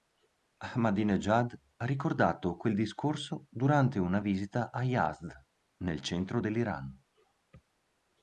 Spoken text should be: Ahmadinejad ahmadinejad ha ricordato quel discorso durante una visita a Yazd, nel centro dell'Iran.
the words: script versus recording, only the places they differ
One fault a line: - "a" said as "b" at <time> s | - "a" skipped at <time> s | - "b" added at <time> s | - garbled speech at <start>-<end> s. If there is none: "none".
- "ahmadinejad" skipped at 1.5 s